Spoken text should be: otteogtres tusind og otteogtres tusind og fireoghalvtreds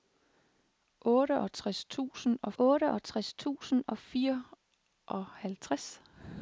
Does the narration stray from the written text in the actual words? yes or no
no